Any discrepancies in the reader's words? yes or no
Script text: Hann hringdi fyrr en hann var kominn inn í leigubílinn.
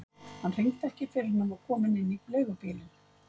yes